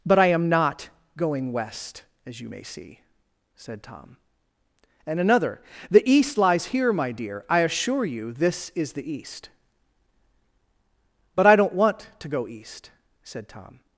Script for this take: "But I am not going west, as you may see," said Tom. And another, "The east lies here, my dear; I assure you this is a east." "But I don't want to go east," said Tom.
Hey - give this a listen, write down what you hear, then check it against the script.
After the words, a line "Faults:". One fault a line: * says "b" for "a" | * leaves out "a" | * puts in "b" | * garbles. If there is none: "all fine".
"But I am not going west, as you may see," said Tom. And another, "The east lies here, my dear; I assure you this is the east." "But I don't want to go east," said Tom.
Faults:
* says "the" for "a"